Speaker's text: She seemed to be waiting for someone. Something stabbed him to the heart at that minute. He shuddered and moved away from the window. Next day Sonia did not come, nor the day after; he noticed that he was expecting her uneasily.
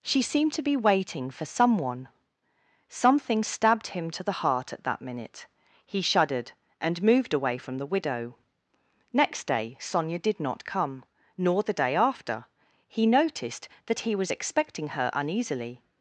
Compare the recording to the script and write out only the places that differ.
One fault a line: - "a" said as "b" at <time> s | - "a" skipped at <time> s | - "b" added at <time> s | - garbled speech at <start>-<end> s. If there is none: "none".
- "window" said as "widow" at 7.9 s